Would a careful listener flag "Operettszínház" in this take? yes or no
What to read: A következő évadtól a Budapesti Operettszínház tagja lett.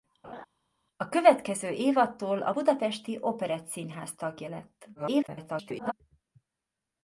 no